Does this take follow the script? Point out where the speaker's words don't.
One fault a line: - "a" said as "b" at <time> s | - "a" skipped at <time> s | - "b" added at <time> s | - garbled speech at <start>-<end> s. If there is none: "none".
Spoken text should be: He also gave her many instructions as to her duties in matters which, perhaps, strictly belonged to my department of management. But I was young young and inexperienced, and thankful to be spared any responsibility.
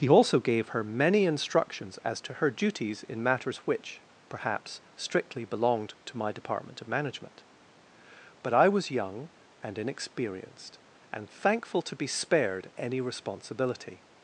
- "young" skipped at 9.3 s